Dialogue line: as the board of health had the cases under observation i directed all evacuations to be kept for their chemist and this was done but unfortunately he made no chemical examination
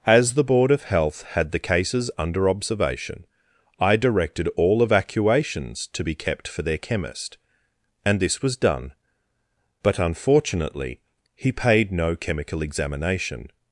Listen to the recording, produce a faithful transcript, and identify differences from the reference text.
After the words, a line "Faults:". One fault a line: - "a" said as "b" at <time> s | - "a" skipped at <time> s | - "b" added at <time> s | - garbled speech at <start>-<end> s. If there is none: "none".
as the board of health had the cases under observation i directed all evacuations to be kept for their chemist and this was done but unfortunately he paid no chemical examination
Faults:
- "made" said as "paid" at 11.5 s